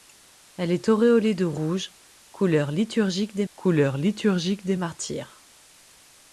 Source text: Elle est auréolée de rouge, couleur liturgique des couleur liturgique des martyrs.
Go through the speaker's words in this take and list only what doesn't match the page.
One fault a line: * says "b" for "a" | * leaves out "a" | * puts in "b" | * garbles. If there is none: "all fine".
all fine